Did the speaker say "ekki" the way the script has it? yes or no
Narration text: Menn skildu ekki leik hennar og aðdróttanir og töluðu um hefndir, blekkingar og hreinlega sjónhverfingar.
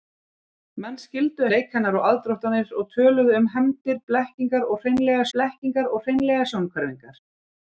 no